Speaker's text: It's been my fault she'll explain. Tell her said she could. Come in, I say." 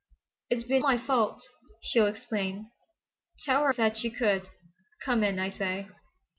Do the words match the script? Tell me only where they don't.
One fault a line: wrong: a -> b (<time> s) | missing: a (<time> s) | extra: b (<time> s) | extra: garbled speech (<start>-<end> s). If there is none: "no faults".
no faults